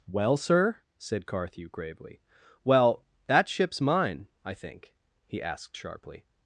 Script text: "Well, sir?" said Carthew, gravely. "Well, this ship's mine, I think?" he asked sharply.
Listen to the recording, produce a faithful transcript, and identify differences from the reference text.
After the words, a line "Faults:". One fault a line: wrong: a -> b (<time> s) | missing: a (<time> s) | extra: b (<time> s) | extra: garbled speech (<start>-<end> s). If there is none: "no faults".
"Well, sir?" said Carthew, gravely. "Well, that ship's mine, I think?" he asked sharply.
Faults:
wrong: this -> that (3.3 s)